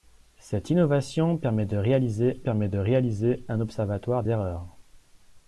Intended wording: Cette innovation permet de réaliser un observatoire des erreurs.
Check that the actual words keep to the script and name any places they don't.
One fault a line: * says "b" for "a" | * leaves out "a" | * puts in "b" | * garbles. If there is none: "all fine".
* puts in "permet de réaliser"
* leaves out "des"